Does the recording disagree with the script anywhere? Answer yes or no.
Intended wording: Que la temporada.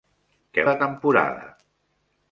no